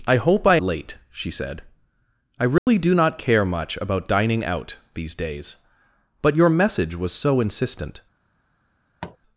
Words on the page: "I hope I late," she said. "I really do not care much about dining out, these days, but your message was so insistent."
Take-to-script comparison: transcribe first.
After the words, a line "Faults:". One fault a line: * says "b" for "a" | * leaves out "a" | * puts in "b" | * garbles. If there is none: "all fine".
"I hope I late," she said. "I really do not care much about dining out, these days, but your message was so insistent."
Faults:
all fine